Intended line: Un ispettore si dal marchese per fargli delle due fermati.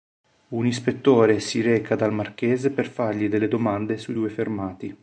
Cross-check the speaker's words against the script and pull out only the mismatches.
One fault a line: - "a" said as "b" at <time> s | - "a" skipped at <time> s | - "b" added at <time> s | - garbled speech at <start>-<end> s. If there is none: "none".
- "reca" added at 1.6 s
- "domande sui" added at 3.5 s